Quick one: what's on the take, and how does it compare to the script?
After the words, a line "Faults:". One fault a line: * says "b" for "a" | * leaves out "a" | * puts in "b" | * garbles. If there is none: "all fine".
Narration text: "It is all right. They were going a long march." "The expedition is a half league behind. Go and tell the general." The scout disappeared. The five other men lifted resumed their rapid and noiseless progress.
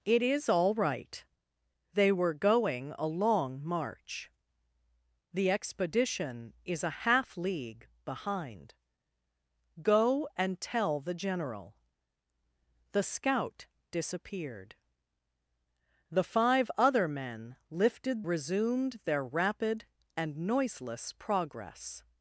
"It is all right. They were going a long march." "The expedition is a half league behind. Go and tell the general." The scout disappeared. The five other men lifted resumed their rapid and noiseless progress.
Faults:
all fine